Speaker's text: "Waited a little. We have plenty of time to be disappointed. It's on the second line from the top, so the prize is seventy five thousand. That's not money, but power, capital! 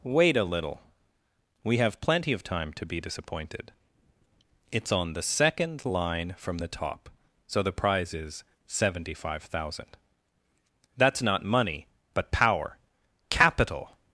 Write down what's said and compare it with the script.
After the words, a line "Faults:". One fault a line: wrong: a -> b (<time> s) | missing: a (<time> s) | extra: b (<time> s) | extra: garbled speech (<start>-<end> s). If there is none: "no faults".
"Wait a little. We have plenty of time to be disappointed. It's on the second line from the top, so the prize is seventy five thousand. That's not money, but power, capital!
Faults:
wrong: Waited -> Wait (0.0 s)